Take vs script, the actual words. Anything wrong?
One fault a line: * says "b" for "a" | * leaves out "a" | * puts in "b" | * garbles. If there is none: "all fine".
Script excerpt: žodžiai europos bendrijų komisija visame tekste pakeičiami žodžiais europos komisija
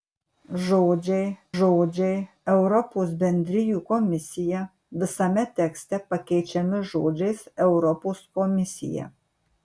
* puts in "žodžiai"